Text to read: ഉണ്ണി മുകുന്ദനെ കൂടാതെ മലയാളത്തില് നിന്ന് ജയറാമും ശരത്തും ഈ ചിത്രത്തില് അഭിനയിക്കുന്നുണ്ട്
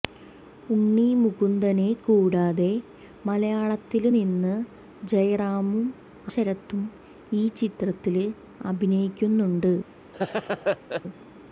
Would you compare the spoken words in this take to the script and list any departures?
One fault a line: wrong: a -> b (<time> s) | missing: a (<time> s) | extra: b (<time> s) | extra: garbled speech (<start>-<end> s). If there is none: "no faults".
no faults